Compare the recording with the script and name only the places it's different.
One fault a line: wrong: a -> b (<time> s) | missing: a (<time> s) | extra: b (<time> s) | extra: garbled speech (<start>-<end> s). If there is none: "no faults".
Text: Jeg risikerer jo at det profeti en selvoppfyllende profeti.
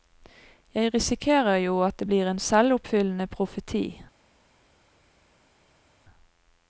wrong: profeti -> blir (2.1 s)